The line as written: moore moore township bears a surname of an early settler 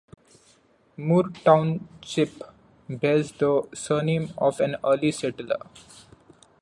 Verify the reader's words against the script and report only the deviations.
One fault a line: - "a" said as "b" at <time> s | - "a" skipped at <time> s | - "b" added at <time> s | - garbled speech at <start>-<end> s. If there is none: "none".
- "moore" skipped at 1.3 s
- "a" said as "the" at 3.3 s